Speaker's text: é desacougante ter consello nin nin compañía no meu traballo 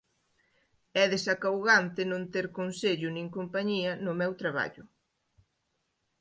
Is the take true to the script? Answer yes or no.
no